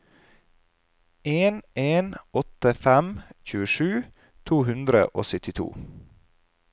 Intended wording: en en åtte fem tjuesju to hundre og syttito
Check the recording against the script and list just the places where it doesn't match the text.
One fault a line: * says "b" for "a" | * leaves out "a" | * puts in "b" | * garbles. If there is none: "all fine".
all fine